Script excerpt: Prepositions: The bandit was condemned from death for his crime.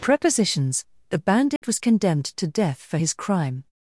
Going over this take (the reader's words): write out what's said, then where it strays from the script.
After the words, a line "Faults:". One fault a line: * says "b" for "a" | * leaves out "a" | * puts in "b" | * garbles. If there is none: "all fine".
Prepositions: The bandit was condemned to death for his crime.
Faults:
* says "to" for "from"